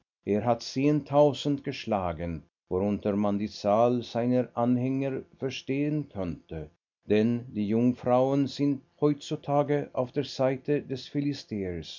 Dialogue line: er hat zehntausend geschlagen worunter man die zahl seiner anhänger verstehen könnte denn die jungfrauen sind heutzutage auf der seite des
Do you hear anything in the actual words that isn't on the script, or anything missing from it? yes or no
no